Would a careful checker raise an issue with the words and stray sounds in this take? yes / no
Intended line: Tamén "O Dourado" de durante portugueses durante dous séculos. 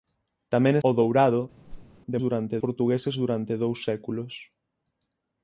yes